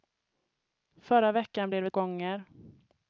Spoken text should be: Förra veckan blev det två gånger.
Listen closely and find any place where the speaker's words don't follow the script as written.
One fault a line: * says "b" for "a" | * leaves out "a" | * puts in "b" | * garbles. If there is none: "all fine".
* leaves out "två"